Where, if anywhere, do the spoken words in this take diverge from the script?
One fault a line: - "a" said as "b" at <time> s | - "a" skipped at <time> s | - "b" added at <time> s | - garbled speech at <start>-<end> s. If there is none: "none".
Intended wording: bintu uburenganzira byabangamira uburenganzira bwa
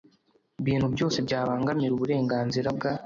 - "uburenganzira" said as "byose" at 0.9 s